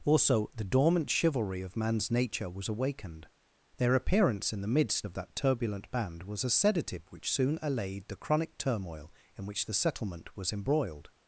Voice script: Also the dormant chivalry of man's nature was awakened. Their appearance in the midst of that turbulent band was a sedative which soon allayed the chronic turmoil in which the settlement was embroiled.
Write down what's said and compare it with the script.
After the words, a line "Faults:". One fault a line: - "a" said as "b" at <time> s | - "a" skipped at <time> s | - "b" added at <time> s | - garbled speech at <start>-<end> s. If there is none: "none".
Also the dormant chivalry of man's nature was awakened. Their appearance in the midst of that turbulent band was a sedative which soon allayed the chronic turmoil in which the settlement was embroiled.
Faults:
none